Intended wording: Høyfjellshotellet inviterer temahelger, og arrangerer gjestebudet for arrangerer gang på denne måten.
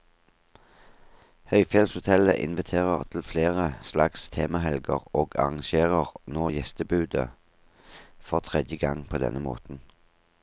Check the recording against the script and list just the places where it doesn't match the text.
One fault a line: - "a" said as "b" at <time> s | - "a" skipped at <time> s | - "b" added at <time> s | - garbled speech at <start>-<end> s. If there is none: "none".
- "til flere slags" added at 3.1 s
- "nå" added at 6.3 s
- "arrangerer" said as "tredje" at 8.4 s